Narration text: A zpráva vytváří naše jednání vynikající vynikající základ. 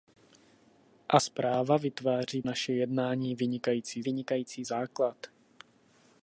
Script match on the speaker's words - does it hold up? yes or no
yes